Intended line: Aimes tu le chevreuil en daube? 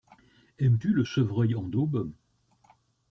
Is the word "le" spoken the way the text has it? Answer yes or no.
yes